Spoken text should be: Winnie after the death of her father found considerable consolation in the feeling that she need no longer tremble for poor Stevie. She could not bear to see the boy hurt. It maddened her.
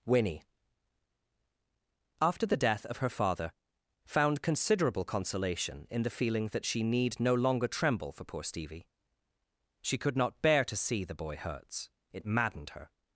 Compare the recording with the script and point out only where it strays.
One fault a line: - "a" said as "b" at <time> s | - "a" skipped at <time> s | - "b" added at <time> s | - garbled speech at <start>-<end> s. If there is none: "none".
- "hurt" said as "hurts" at 11.3 s